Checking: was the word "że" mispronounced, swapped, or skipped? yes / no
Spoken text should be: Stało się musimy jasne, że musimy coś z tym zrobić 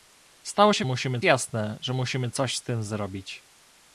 no